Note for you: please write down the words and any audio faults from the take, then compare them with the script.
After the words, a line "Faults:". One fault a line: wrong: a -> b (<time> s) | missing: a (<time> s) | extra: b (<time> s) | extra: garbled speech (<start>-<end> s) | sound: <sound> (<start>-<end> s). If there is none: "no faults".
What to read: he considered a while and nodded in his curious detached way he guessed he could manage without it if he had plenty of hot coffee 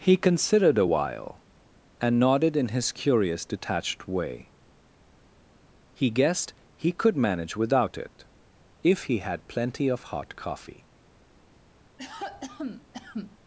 he considered a while and nodded in his curious detached way he guessed he could manage without it if he had plenty of hot coffee
Faults:
sound: cough (12.0-13.4 s)